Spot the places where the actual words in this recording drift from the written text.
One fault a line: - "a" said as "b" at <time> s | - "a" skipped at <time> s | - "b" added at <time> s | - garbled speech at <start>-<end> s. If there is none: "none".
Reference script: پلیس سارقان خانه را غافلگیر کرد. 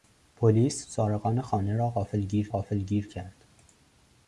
- "غافلگیر" added at 2.5 s